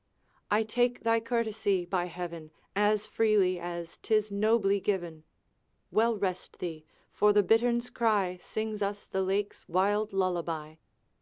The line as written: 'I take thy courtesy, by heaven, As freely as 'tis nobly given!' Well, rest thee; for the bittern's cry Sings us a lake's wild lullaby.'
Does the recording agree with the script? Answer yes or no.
no